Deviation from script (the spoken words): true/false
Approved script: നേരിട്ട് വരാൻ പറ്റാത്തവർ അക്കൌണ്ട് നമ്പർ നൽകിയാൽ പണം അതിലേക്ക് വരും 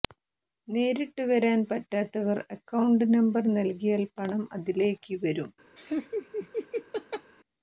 false